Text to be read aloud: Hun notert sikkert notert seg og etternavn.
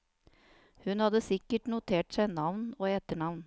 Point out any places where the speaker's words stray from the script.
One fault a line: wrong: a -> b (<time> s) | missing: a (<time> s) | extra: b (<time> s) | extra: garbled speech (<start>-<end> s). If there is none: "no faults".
wrong: notert -> hadde (1.0 s)
extra: navn (2.3 s)